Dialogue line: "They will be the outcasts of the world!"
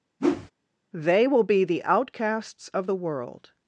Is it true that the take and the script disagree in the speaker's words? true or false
false